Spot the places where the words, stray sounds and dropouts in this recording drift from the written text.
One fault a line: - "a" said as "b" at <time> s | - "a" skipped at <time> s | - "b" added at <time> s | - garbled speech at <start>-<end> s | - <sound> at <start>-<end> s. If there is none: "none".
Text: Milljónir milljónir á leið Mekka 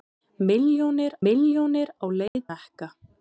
- dropout at 2.3-2.4 s